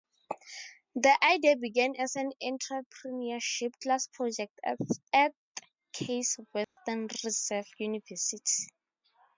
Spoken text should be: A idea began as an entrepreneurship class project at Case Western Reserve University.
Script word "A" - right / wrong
wrong